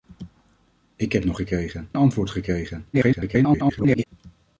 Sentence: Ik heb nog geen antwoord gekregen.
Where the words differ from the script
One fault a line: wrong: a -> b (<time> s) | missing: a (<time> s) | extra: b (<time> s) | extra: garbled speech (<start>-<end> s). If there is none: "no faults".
wrong: geen -> gekregen (1.3 s)
extra: garbled speech (2.9-4.1 s)